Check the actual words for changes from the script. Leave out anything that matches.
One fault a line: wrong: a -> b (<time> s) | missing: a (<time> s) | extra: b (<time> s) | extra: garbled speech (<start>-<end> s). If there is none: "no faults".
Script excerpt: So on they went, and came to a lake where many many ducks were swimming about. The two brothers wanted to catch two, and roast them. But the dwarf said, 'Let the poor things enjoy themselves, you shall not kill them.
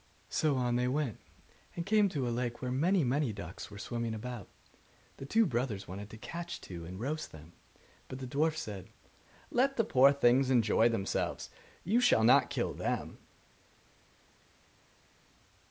no faults